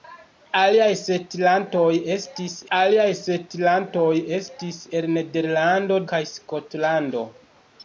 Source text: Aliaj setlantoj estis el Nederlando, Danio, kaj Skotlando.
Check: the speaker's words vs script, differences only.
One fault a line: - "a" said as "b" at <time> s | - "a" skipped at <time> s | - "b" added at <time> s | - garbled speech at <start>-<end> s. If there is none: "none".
- "aliaj setlantoj estis" added at 2.8 s
- "Danio" skipped at 6.0 s